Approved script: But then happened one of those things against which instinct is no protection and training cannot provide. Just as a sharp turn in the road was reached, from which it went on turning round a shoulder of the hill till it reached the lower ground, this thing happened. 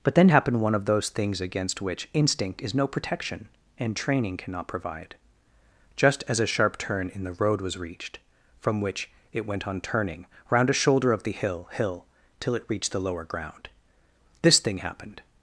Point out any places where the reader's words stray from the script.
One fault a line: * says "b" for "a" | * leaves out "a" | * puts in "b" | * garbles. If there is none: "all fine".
* puts in "hill"